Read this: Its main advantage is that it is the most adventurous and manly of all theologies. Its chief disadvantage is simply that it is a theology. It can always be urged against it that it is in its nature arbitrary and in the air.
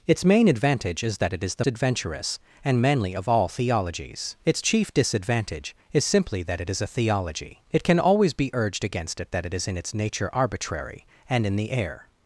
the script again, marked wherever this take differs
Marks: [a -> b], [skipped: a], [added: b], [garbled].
Its main advantage is that it is the [skipped: most] adventurous and manly of all theologies. Its chief disadvantage is simply that it is a theology. It can always be urged against it that it is in its nature arbitrary and in the air.